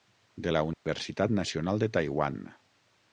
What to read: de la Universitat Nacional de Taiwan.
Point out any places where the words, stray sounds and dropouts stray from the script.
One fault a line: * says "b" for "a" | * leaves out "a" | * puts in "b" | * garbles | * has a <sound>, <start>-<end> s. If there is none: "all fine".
* has a dropout, 0.7-0.9 s